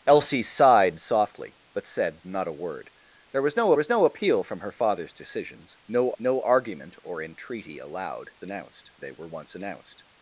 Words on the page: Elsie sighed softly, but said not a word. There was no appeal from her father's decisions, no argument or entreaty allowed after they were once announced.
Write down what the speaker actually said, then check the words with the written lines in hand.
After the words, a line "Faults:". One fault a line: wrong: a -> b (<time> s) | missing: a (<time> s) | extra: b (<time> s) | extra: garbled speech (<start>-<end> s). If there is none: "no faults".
Elsie sighed softly, but said not a word. There was no was no appeal from her father's decisions, no no argument or entreaty allowed announced they were once announced.
Faults:
extra: was no (3.7 s)
extra: no (6.2 s)
wrong: after -> announced (8.4 s)